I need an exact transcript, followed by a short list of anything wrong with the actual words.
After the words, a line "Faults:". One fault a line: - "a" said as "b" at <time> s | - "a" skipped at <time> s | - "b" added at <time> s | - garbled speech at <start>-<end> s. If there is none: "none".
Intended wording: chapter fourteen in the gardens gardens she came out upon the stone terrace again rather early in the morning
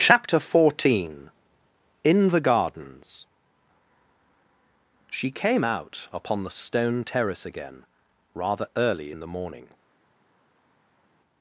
chapter fourteen in the gardens she came out upon the stone terrace again rather early in the morning
Faults:
- "gardens" skipped at 3.3 s